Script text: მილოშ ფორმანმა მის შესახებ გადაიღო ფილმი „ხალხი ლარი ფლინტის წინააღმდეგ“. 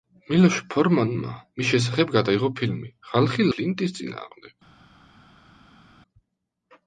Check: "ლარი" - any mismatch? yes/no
yes